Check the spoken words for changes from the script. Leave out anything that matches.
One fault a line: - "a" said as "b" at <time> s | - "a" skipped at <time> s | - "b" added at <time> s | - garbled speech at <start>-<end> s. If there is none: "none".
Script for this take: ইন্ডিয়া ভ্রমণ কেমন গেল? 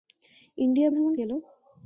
- "কেমন" skipped at 1.1 s